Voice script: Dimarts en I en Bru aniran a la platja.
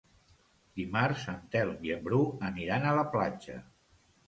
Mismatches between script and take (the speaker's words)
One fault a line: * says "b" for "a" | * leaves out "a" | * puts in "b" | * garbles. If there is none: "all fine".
* puts in "Telm"